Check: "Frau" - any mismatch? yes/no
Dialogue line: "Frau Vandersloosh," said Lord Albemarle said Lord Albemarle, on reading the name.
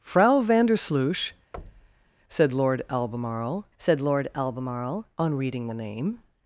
no